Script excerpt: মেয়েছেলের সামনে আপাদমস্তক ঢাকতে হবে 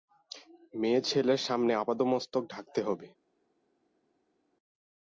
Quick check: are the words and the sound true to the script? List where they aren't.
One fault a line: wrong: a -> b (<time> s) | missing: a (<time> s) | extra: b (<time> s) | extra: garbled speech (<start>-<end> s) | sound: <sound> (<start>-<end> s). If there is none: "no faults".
no faults